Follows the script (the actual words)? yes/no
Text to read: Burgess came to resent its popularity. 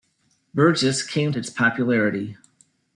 no